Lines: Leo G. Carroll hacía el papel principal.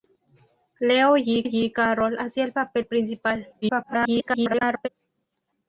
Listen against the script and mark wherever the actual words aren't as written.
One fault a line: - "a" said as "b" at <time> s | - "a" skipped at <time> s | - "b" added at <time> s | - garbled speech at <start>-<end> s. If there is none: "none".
- "G" added at 1.4 s
- garbled speech at 3.6-4.9 s